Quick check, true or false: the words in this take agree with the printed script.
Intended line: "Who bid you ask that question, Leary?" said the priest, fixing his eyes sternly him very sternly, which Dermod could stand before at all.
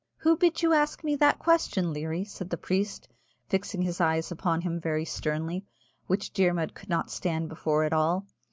false